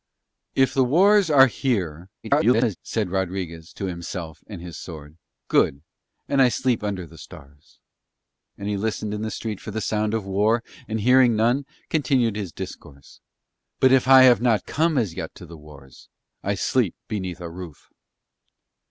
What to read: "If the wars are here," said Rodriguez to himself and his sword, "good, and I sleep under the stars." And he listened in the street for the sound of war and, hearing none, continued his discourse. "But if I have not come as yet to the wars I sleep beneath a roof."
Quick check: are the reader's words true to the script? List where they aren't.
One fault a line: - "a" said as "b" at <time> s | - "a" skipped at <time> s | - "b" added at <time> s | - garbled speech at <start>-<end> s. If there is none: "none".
- garbled speech at 2.2-2.8 s